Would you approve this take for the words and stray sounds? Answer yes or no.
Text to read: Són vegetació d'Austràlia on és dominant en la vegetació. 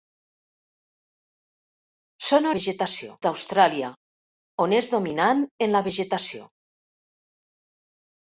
yes